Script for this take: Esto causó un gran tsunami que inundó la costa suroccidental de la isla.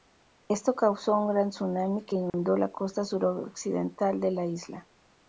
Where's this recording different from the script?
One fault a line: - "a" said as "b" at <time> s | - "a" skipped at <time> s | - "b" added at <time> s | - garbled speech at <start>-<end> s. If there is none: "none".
none